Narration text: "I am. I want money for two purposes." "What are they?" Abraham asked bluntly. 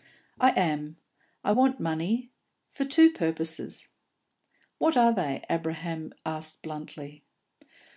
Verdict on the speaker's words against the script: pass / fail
pass